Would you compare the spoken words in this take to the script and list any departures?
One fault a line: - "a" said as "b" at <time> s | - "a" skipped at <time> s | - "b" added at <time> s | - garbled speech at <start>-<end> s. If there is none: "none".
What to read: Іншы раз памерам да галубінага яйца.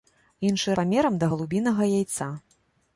- "раз" skipped at 0.8 s